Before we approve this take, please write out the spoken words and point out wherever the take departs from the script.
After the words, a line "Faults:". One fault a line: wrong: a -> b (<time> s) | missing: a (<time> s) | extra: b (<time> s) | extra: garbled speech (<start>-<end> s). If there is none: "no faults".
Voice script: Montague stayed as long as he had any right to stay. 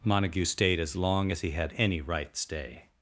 Montague stayed as long as he had any right stay.
Faults:
missing: to (2.4 s)